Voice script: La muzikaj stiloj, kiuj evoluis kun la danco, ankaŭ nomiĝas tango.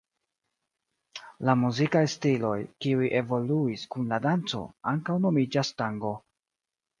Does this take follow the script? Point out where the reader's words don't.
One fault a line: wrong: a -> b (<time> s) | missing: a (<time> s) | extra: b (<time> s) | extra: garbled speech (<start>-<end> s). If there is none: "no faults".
no faults